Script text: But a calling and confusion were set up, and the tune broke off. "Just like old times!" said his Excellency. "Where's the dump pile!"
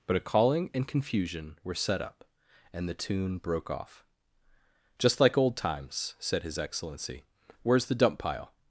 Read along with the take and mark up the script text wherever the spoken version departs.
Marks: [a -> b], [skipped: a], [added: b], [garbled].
But a calling and confusion were set up, and the tune broke off. "Just like old times!" said his Excellency. "Where's the dump pile!"